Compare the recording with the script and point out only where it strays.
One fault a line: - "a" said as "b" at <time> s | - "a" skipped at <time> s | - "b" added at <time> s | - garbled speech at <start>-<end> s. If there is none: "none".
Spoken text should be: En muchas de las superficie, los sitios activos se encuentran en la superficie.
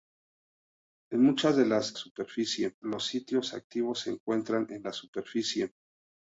none